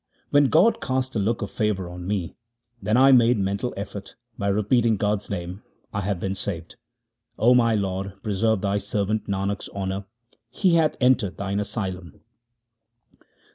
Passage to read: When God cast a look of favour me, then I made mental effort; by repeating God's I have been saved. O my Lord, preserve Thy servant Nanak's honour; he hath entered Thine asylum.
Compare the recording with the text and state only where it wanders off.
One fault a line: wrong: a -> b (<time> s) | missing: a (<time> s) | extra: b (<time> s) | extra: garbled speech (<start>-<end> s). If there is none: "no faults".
extra: on (1.9 s)
extra: name (5.3 s)